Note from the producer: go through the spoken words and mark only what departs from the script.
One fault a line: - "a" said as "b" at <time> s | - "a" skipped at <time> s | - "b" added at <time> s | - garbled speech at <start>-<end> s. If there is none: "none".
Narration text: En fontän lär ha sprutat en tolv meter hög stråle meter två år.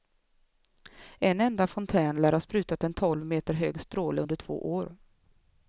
- "enda" added at 1.4 s
- "meter" said as "under" at 4.2 s